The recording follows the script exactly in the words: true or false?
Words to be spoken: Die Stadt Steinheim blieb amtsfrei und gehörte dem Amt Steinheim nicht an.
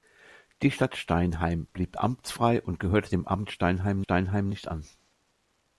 false